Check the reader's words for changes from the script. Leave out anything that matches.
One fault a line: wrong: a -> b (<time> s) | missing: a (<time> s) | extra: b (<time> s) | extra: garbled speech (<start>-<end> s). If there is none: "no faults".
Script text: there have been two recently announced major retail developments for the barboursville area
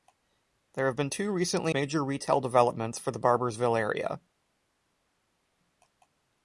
missing: announced (1.8 s)